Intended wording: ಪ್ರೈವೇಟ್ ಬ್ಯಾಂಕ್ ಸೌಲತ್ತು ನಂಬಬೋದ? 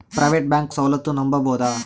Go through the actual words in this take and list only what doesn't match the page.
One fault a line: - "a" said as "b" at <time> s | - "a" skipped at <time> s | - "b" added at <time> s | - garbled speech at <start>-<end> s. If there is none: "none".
none